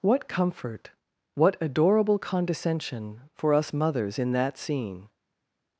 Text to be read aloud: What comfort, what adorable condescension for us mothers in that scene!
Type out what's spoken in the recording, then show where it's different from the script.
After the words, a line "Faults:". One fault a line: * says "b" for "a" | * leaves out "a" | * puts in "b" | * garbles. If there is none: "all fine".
What comfort, what adorable condescension for us mothers in that scene!
Faults:
all fine